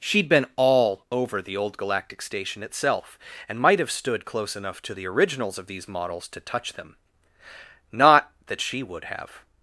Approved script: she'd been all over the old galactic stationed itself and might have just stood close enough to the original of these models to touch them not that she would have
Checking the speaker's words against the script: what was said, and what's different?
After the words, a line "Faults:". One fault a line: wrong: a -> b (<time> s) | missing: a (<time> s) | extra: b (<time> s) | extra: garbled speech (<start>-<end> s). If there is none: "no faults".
she'd been all over the old galactic station itself and might have stood close enough to the originals of these models to touch them not that she would have
Faults:
wrong: stationed -> station (2.2 s)
missing: just (3.9 s)
wrong: original -> originals (5.0 s)